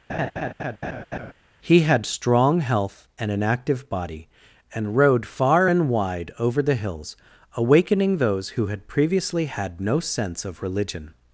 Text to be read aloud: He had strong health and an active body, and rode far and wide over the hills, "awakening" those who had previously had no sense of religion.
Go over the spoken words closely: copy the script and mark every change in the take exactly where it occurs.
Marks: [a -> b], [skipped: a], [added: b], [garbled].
He had strong health and an active body, and rode far and wide over the hills, "awakening" those who had previously had no sense of religion.